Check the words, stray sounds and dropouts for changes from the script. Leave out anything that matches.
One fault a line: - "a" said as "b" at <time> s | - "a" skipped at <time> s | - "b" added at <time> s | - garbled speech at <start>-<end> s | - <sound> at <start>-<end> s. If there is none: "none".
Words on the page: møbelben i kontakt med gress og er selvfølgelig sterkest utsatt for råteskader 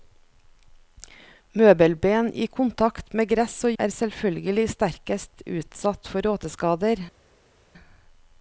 none